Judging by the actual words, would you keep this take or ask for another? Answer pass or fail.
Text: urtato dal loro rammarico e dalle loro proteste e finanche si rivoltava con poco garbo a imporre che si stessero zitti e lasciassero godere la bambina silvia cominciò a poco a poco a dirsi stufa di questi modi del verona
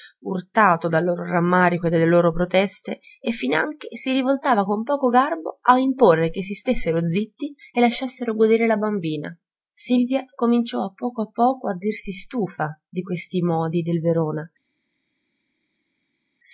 pass